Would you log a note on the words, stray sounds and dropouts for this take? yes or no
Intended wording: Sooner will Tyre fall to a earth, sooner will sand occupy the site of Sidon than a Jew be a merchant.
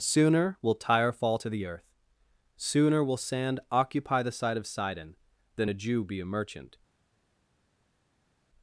yes